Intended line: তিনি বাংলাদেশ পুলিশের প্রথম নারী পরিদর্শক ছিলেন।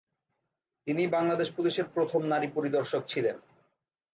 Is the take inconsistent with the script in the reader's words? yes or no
no